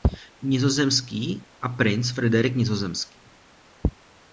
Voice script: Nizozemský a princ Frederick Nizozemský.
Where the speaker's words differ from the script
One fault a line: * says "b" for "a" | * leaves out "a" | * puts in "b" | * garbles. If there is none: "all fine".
all fine